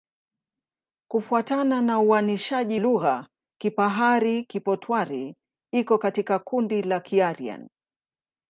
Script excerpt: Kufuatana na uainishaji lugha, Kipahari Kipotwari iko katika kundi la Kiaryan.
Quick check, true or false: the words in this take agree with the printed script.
true